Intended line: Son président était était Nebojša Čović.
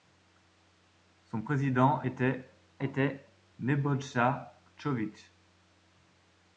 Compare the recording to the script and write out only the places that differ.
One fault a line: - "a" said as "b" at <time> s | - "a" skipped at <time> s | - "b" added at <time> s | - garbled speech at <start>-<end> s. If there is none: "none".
none